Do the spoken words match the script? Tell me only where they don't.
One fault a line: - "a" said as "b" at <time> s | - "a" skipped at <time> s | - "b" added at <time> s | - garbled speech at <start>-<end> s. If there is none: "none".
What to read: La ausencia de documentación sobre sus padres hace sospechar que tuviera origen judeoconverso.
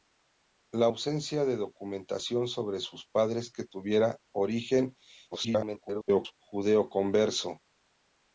- "hace sospechar" skipped at 3.5 s
- garbled speech at 5.3-6.3 s